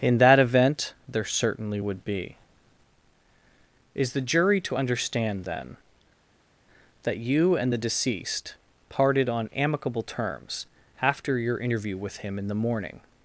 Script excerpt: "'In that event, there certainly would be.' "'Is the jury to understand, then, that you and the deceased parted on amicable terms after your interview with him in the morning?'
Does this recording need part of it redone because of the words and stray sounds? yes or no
no